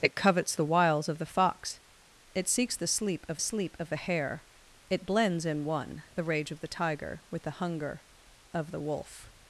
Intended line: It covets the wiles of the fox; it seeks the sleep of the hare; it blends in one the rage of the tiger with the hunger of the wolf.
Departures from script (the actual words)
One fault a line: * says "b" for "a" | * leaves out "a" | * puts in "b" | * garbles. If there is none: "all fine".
* puts in "sleep of"